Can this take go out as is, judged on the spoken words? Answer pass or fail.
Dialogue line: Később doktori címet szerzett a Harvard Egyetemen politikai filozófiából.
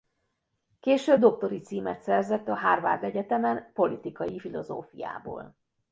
pass